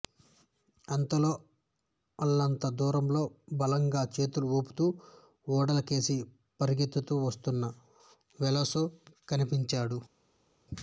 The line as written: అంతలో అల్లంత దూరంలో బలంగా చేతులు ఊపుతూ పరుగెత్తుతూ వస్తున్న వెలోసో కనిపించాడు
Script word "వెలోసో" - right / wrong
right